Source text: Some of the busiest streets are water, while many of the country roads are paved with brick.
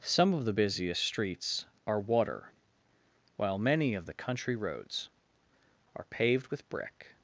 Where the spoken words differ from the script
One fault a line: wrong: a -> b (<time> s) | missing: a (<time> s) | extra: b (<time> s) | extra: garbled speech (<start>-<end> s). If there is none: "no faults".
no faults